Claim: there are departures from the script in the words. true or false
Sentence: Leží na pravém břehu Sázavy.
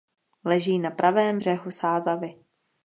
false